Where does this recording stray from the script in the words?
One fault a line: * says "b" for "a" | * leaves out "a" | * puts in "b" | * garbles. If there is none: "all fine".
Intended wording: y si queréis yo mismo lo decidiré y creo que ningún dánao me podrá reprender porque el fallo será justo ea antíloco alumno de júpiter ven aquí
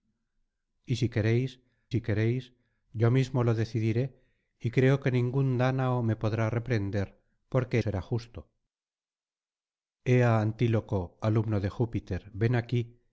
* puts in "si queréis"
* leaves out "el fallo"